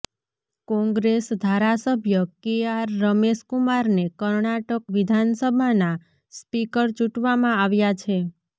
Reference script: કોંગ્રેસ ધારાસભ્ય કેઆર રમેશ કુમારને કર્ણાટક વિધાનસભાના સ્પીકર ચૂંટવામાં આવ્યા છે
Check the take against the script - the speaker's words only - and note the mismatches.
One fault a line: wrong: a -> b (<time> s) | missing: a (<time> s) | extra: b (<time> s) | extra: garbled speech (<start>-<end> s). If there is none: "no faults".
no faults